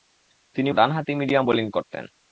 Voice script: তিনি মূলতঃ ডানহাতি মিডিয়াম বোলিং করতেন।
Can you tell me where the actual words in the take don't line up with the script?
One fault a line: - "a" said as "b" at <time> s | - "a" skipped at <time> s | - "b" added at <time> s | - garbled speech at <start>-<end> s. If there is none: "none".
- "মূলতঃ" skipped at 0.7 s